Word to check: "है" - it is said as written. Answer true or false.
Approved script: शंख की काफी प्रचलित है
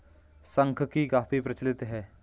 true